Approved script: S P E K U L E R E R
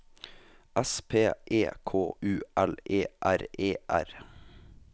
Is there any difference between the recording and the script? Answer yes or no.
no